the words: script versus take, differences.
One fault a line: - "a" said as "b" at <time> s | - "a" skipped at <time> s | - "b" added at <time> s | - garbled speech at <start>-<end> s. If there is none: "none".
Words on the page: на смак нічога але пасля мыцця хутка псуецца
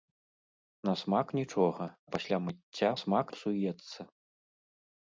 - "але" skipped at 1.9 s
- "хутка" said as "смак" at 3.0 s